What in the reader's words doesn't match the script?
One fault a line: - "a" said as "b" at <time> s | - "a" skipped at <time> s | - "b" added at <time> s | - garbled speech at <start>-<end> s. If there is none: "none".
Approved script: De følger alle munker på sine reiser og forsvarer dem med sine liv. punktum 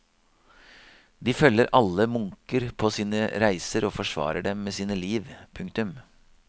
none